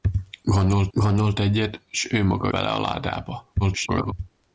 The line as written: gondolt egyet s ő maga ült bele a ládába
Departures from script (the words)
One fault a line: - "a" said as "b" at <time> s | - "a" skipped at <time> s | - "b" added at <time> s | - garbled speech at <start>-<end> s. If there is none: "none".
- "gondolt" added at 0.9 s
- "ült" skipped at 2.5 s
- garbled speech at 3.6-4.1 s